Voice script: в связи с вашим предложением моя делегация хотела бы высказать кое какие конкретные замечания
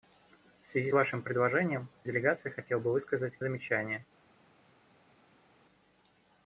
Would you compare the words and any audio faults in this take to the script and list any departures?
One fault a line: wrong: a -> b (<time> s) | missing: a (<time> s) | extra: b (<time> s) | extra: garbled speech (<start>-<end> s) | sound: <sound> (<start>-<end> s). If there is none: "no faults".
missing: с (0.9 s)
missing: моя (1.9 s)
missing: кое какие конкретные (3.3 s)